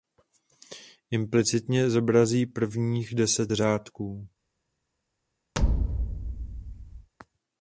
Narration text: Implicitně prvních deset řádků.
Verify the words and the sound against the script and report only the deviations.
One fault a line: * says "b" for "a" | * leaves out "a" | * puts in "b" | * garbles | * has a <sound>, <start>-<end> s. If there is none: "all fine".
* puts in "zobrazí"
* has a thud, 5.5-7.1 s